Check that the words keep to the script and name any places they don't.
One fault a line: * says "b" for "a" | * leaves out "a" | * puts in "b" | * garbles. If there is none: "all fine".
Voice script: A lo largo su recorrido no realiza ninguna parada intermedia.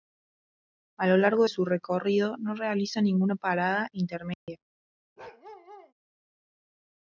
all fine